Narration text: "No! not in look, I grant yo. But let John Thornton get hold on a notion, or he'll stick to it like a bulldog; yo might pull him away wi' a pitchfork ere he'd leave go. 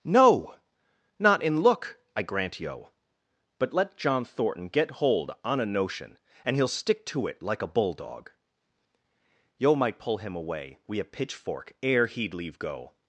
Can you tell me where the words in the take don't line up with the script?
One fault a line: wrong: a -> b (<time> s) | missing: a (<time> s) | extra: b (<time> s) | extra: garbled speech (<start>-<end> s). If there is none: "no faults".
wrong: or -> and (6.4 s)